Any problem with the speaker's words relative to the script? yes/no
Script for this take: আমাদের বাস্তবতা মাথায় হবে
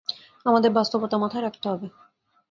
yes